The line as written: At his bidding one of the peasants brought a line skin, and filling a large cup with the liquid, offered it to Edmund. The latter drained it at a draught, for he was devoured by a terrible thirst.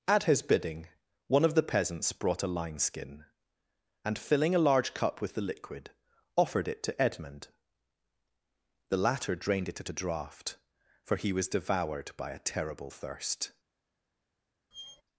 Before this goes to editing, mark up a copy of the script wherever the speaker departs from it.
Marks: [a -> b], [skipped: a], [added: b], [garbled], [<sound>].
At his bidding one of the peasants brought a line skin, and filling a large cup with the liquid, offered it to Edmund. The latter drained it at a draught, for he was devoured by a terrible thirst. [squeak]